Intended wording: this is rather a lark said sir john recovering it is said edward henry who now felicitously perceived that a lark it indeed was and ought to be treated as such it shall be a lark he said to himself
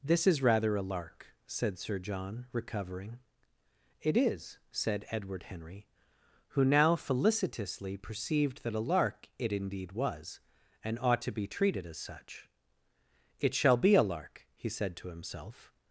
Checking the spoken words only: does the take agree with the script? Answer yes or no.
yes